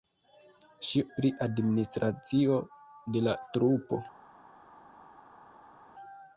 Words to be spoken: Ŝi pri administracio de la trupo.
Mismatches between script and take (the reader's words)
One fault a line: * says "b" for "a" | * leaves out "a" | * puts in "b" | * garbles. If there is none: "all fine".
all fine